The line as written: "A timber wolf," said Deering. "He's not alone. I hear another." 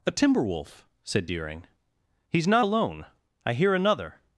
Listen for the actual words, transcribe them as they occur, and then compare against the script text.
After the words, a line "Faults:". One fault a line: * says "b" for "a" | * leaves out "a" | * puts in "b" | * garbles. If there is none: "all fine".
"A timber wolf," said Deering. "He's not alone. I hear another."
Faults:
all fine